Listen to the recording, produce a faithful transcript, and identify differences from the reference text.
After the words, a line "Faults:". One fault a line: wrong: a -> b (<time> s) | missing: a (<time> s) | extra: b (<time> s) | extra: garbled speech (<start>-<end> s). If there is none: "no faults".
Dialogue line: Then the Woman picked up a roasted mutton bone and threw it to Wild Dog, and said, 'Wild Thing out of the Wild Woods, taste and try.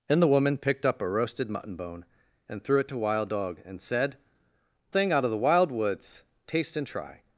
Then the Woman picked up a roasted mutton bone and threw it to Wild Dog, and said, 'Thing out of the Wild Woods, taste and try.
Faults:
missing: Wild (4.2 s)